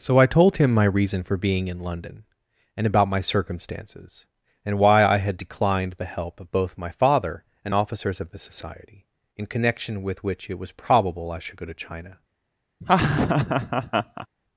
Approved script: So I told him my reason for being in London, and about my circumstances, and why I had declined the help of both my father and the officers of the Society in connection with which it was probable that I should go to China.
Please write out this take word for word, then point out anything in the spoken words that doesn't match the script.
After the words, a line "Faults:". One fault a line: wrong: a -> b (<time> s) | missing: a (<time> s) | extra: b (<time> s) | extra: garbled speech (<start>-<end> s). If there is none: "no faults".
So I told him my reason for being in London, and about my circumstances, and why I had declined the help of both my father and officers of the Society in connection with which it was probable I should go to China.
Faults:
missing: the (7.8 s)
missing: that (11.3 s)